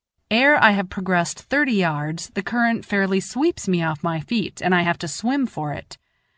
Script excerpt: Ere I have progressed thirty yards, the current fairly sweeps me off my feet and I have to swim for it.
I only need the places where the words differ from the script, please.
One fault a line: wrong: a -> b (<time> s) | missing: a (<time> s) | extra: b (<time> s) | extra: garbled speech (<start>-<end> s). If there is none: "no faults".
no faults